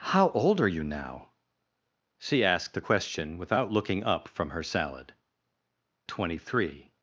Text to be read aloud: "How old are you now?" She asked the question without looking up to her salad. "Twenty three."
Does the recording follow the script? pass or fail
fail